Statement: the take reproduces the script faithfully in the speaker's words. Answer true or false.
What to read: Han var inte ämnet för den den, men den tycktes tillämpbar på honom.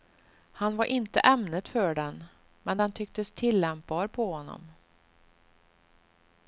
false